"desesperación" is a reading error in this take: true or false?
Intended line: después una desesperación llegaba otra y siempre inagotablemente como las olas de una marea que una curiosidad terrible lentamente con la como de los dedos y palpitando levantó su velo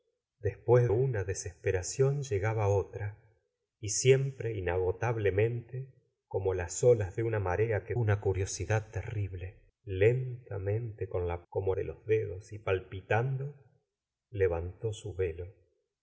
false